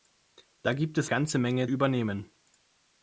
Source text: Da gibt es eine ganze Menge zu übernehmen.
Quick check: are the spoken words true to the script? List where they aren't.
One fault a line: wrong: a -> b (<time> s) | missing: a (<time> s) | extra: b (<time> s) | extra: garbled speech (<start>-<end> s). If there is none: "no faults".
missing: eine (1.1 s)
missing: zu (1.7 s)